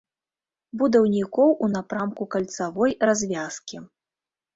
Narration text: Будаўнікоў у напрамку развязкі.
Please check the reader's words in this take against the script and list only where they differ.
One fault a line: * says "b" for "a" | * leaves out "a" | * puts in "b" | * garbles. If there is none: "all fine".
* puts in "кальцавой"